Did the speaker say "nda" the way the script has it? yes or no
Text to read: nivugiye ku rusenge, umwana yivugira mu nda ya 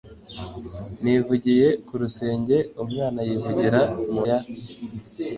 no